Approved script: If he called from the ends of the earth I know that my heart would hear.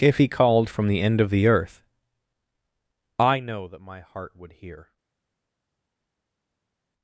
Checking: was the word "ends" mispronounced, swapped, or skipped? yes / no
yes